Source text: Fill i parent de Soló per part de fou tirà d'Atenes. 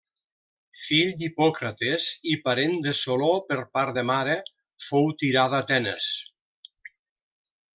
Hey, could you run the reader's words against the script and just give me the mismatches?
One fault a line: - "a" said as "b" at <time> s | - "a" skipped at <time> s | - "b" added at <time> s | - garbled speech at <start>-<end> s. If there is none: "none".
- "d'Hipòcrates" added at 1.2 s
- "mare" added at 4.1 s